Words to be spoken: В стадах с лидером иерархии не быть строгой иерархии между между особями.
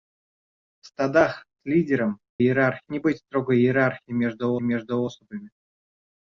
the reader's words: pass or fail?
pass